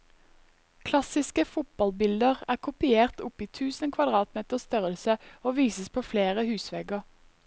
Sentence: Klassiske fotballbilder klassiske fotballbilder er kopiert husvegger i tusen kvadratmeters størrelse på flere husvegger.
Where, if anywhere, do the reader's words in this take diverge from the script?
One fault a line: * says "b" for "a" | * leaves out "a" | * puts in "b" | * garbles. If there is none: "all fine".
* leaves out "klassiske fotballbilder"
* says "opp" for "husvegger"
* puts in "og vises"